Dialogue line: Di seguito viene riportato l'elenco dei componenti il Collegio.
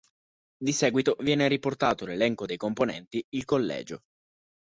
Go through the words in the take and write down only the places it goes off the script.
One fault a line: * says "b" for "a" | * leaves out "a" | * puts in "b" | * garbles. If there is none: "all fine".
all fine